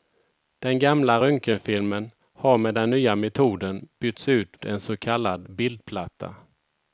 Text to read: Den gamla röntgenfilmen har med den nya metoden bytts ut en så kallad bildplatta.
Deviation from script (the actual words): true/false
false